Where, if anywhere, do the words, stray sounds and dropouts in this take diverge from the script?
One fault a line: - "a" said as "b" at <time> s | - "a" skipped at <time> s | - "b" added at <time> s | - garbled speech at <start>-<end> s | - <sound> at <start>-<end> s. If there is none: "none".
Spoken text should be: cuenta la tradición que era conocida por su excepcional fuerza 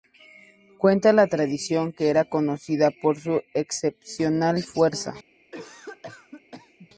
- cough at 5.5-6.9 s